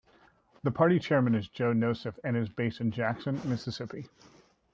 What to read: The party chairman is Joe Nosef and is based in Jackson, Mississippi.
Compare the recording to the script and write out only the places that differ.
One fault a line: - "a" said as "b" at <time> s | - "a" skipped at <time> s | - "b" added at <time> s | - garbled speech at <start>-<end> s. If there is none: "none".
none